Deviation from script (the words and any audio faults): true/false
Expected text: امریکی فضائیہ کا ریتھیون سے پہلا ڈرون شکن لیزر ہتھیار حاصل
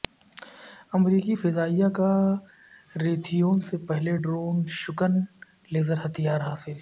false